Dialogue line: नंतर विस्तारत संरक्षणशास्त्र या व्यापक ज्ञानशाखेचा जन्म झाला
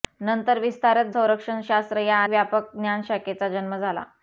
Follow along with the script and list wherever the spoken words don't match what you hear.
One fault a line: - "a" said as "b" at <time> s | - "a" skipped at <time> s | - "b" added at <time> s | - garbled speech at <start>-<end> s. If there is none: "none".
none